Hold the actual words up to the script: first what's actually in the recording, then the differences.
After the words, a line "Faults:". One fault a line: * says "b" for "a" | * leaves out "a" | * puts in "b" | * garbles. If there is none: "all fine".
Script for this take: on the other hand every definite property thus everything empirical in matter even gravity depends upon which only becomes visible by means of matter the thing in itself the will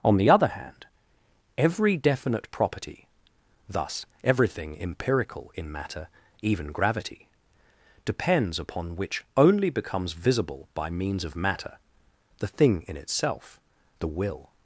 on the other hand every definite property thus everything empirical in matter even gravity depends upon which only becomes visible by means of matter the thing in itself the will
Faults:
all fine